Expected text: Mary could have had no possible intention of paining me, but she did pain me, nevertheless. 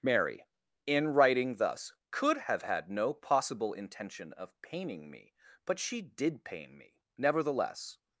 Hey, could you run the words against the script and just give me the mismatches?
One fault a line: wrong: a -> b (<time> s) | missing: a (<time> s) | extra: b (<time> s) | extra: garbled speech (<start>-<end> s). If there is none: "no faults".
extra: in writing thus (0.9 s)